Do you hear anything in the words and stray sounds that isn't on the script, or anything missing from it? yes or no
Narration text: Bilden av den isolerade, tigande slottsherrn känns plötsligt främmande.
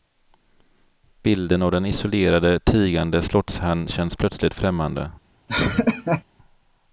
yes